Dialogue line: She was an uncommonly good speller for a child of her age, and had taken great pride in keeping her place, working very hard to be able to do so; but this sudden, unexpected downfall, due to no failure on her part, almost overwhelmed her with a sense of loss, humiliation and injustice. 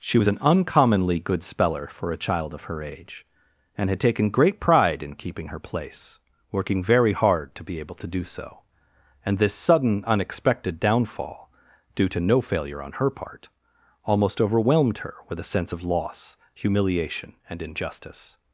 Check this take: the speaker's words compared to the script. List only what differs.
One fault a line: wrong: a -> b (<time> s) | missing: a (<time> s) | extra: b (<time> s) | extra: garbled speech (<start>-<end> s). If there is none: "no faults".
wrong: but -> and (9.2 s)